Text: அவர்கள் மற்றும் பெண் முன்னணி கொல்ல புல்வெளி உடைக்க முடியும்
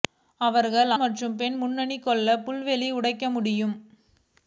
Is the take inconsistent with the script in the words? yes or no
no